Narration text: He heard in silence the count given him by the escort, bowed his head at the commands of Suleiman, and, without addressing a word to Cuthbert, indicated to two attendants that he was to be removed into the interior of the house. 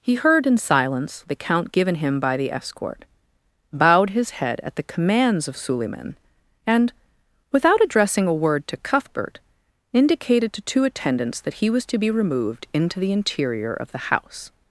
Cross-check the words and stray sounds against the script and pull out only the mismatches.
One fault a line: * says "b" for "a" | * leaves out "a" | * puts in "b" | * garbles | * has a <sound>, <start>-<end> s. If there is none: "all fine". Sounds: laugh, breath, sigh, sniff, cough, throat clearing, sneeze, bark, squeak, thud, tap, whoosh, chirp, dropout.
all fine